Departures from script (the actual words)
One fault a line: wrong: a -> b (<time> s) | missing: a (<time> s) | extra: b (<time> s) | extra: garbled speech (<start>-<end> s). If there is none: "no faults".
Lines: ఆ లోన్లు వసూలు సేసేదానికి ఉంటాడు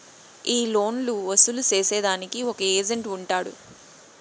wrong: ఆ -> ఈ (0.5 s)
extra: ఒక ఏజెంట్ (2.5 s)